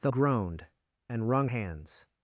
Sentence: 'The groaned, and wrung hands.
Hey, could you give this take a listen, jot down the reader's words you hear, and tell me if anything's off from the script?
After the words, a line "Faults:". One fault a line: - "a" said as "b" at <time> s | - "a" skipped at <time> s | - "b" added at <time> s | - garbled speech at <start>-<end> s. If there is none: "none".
'The groaned, and wrung hands.
Faults:
none